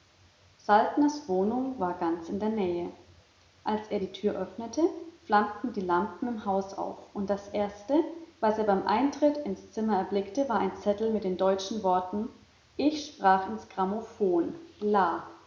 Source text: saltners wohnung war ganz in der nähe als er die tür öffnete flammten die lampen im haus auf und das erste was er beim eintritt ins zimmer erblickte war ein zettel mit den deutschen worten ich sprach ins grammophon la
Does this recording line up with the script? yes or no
yes